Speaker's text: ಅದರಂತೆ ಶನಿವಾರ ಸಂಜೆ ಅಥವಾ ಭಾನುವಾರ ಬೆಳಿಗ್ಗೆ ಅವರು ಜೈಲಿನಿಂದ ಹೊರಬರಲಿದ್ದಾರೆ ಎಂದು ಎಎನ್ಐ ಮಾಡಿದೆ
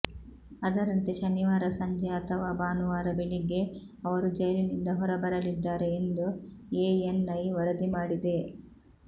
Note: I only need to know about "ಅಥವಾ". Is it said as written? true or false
true